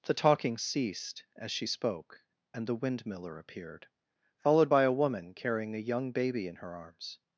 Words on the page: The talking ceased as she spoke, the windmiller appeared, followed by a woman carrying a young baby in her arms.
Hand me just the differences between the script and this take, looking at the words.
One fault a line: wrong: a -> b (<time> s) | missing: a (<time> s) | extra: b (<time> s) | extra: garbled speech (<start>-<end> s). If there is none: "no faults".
extra: and (2.5 s)